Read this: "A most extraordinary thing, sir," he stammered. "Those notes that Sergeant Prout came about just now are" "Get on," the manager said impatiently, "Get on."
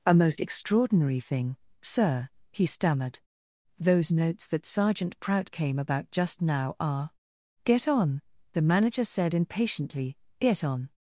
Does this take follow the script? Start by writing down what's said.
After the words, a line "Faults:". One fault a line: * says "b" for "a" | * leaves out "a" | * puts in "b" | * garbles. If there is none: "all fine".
"A most extraordinary thing, sir," he stammered. "Those notes that Sergeant Prout came about just now are" "Get on," the manager said impatiently, "Get on."
Faults:
all fine